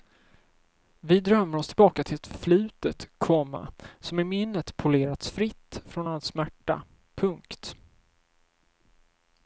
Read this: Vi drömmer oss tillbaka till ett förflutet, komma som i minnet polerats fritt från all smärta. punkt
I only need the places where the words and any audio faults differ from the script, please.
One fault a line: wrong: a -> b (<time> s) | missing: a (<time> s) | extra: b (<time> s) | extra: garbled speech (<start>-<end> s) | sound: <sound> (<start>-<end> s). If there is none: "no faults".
no faults